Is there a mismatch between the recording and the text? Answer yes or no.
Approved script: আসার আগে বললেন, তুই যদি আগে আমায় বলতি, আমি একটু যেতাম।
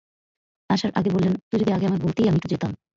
no